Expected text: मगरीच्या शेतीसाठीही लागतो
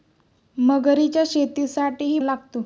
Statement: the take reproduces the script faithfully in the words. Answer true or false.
true